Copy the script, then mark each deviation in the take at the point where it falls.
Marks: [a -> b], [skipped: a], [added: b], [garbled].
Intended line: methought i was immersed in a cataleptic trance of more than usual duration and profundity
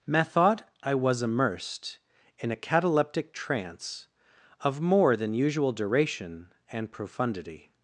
methought i was immersed in a cataleptic trance of more than usual duration and profundity